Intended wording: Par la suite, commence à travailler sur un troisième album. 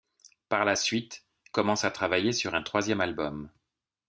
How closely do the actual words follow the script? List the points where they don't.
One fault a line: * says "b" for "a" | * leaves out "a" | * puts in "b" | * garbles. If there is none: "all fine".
all fine